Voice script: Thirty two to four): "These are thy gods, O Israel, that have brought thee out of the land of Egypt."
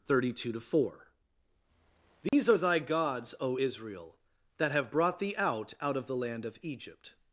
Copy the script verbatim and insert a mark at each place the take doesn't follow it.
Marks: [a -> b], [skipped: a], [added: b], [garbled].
Thirty two to four): "These are thy gods, O Israel, that have brought thee out [added: out] of the land of Egypt."